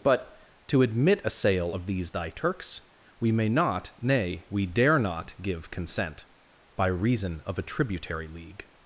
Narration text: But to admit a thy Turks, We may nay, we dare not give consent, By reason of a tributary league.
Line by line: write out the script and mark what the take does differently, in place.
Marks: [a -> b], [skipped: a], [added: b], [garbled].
But to admit a [added: sale of these] thy Turks, We may [added: not] nay, we dare not give consent, By reason of a tributary league.